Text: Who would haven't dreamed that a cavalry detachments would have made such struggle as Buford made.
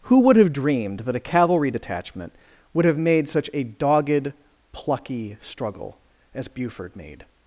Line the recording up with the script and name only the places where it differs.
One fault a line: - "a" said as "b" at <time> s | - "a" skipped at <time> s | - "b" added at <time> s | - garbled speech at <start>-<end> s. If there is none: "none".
- "haven't" said as "have" at 0.3 s
- "detachments" said as "detachment" at 1.7 s
- "a dogged plucky" added at 3.5 s